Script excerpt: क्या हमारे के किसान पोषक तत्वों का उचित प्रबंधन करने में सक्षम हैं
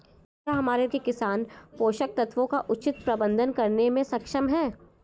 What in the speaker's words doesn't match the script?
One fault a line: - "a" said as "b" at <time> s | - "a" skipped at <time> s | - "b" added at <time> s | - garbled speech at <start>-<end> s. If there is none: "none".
none